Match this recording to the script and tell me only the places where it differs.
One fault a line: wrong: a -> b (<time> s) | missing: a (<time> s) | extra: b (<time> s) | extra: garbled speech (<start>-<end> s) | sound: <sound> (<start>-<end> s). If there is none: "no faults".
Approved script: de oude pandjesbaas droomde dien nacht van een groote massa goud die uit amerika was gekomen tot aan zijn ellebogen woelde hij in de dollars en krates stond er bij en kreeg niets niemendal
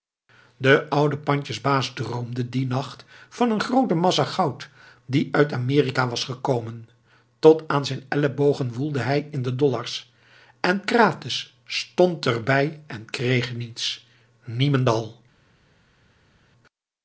no faults